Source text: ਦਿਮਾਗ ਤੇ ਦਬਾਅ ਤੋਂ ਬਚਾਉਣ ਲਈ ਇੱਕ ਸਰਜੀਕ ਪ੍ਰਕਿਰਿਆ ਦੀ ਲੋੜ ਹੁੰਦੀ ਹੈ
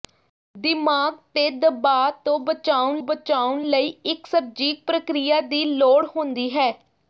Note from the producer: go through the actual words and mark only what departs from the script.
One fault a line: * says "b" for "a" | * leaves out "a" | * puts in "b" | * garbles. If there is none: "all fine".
* puts in "ਬਚਾਉਣ"